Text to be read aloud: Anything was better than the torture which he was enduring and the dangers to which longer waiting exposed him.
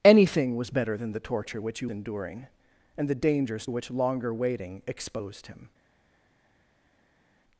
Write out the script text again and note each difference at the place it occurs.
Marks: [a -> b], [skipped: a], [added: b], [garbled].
Anything was better than the torture which he [skipped: was] enduring and the dangers [skipped: to] which longer waiting exposed him.